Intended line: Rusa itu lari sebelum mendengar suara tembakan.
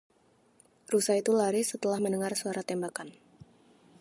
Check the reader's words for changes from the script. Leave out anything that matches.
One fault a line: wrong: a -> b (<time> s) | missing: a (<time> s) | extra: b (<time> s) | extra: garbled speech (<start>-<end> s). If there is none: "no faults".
wrong: sebelum -> setelah (1.6 s)